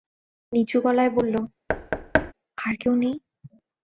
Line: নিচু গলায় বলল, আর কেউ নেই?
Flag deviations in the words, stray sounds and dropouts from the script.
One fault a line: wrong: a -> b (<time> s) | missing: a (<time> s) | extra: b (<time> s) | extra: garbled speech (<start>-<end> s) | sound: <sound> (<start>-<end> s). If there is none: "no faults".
sound: thud (1.7-2.3 s)